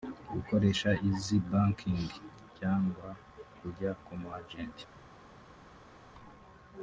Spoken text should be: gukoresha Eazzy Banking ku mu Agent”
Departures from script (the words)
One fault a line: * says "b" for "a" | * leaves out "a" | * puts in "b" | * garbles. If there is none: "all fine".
* puts in "cyangwa kujya"